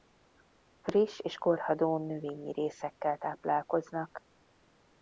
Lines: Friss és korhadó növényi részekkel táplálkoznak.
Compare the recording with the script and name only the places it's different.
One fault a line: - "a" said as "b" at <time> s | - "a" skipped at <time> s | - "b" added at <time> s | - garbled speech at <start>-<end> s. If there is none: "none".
none